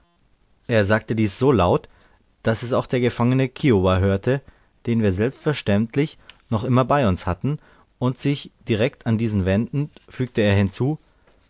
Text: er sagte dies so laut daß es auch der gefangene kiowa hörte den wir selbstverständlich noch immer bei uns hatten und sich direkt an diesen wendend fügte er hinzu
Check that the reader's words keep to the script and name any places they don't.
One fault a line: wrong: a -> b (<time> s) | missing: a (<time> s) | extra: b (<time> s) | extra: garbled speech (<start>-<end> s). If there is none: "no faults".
no faults